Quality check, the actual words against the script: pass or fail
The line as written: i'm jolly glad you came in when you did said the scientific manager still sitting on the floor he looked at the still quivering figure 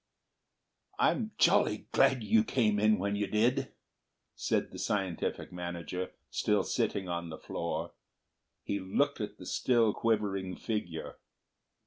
pass